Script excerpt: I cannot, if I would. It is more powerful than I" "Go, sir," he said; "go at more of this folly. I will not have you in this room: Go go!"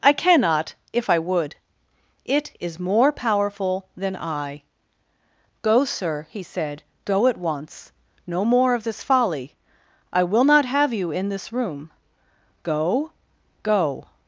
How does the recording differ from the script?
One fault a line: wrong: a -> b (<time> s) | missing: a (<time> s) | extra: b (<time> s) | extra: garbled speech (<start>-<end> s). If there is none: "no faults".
extra: once no (7.4 s)